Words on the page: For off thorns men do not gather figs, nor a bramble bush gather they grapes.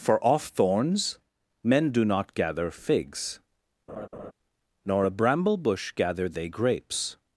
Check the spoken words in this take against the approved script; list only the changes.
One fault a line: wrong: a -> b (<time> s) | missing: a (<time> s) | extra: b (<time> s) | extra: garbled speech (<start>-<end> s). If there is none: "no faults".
no faults